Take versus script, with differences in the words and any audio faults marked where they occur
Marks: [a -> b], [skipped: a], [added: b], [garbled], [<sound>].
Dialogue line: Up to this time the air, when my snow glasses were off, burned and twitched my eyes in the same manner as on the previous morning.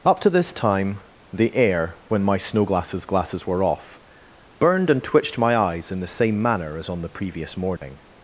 Up to this time the air, when my snow glasses [added: glasses] were off, burned and twitched my eyes in the same manner as on the previous morning. [dropout]